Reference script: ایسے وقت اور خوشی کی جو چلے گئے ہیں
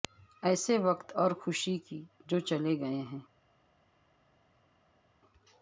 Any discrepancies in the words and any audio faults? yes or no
no